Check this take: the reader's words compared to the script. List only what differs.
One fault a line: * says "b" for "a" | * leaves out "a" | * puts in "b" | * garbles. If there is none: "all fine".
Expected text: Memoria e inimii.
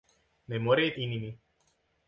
all fine